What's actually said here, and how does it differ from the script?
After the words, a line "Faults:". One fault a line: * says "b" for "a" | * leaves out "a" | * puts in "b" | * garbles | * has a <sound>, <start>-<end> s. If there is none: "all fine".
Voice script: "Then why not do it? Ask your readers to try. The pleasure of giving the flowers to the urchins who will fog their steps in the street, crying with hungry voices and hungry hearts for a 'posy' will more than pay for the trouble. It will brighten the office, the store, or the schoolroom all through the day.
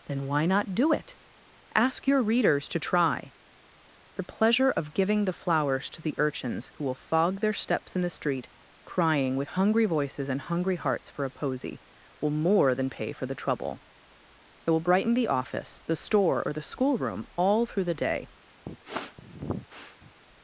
"Then why not do it? Ask your readers to try. The pleasure of giving the flowers to the urchins who will fog their steps in the street, crying with hungry voices and hungry hearts for a 'posy' will more than pay for the trouble. It will brighten the office, the store, or the schoolroom all through the day.
Faults:
* has a sniff, 18.7-20.1 s